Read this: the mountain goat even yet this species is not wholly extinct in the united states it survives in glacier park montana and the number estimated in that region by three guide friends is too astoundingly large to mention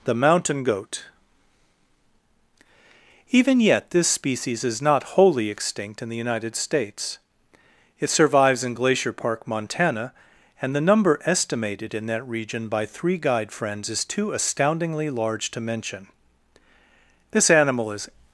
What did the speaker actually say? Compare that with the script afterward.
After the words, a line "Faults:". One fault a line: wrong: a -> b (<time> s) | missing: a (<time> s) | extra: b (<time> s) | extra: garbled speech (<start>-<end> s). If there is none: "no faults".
the mountain goat even yet this species is not wholly extinct in the united states it survives in glacier park montana and the number estimated in that region by three guide friends is too astoundingly large to mention this animal is
Faults:
extra: this animal is (17.3 s)